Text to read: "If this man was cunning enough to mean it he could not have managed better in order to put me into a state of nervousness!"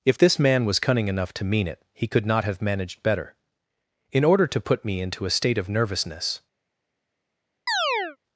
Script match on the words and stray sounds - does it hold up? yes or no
no